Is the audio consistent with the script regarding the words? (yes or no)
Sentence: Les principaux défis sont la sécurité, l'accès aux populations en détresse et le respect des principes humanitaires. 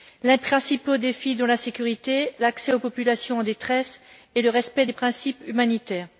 yes